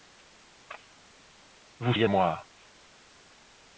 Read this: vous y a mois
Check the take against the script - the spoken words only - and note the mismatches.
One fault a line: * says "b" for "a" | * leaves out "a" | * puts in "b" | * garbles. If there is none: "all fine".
all fine